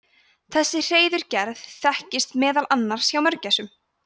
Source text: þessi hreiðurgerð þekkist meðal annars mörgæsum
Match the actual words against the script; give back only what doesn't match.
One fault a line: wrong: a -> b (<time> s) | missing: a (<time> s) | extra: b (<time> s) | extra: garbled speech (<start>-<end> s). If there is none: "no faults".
extra: hjá (3.2 s)